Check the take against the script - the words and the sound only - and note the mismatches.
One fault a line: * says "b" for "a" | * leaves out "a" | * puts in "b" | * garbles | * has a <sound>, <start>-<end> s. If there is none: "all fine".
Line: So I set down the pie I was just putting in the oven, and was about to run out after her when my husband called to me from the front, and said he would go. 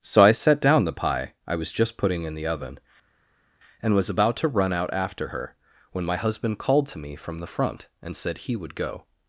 all fine